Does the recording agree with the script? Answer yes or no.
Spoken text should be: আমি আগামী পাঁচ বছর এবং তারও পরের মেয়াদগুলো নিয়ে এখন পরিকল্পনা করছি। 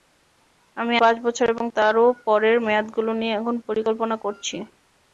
no